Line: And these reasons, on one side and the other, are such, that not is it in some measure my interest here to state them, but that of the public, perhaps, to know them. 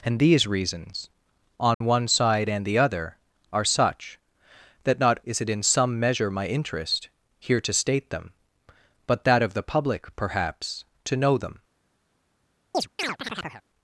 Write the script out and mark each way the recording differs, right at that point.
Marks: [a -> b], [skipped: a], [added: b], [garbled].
And these reasons, on one side and the other, are such, that not is it in some measure my interest here to state them, but that of the public, perhaps, to know them.